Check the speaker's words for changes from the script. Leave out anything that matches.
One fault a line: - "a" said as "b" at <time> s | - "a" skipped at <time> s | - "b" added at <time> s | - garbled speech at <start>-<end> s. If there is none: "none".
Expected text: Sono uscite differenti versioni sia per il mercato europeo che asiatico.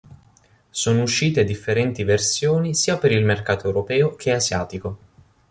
none